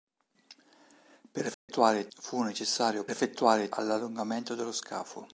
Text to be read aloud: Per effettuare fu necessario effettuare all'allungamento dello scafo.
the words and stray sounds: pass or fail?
fail